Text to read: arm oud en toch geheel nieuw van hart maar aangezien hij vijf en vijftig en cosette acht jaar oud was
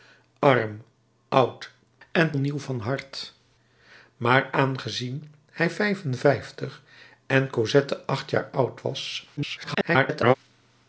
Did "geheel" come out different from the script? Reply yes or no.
yes